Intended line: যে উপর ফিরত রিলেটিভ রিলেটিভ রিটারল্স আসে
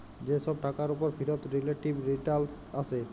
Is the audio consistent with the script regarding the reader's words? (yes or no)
no